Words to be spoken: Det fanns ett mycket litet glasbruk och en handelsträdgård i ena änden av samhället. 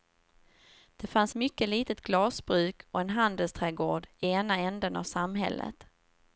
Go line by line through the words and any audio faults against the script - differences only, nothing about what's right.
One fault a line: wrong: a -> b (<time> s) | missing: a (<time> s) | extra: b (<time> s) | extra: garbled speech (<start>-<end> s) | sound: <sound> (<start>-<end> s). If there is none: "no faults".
missing: ett (1.3 s)